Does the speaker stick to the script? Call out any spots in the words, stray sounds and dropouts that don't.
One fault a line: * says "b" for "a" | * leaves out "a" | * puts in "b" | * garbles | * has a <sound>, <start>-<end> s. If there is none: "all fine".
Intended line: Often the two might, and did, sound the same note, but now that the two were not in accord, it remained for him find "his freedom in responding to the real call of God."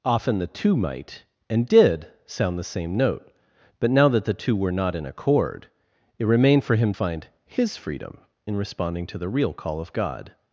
all fine